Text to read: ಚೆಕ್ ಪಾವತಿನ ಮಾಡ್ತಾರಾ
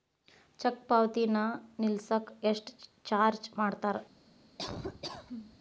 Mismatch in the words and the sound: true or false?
true